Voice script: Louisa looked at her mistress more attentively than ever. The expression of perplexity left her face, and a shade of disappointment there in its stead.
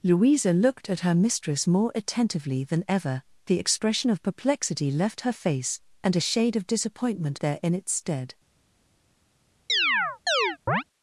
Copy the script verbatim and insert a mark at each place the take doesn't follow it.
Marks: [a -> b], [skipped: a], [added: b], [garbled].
Louisa looked at her mistress more attentively than ever. The expression of perplexity left her face, and a shade of disappointment there in its stead.